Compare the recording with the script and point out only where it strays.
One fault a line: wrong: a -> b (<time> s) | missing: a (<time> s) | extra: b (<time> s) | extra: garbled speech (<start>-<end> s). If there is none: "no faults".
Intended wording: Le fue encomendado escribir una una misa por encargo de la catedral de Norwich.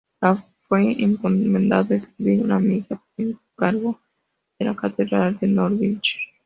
missing: una (2.6 s)